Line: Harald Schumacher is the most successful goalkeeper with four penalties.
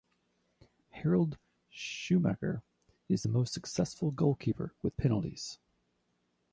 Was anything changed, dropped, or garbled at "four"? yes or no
yes